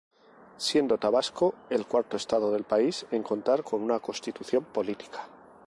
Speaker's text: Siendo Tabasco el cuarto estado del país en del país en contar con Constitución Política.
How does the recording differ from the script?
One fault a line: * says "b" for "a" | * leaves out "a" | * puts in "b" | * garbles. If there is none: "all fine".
* leaves out "del país en"
* puts in "una"